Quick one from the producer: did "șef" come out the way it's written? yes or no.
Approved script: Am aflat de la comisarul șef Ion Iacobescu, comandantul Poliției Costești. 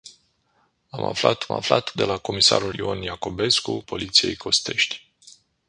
no